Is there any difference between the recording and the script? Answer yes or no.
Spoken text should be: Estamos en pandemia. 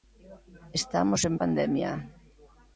no